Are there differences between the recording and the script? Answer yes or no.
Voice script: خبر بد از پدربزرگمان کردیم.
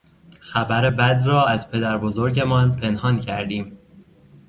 yes